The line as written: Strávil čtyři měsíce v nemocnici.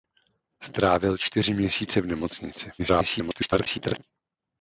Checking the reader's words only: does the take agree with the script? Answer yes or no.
no